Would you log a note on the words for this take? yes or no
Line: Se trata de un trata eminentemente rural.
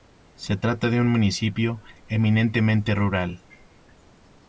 yes